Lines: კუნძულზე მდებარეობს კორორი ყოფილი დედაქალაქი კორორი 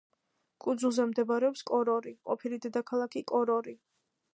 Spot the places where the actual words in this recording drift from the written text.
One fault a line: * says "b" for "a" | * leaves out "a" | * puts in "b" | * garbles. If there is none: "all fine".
all fine